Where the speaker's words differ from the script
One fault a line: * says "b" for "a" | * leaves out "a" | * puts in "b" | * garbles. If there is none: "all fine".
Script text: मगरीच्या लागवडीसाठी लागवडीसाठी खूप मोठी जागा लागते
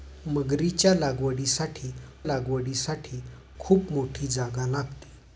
all fine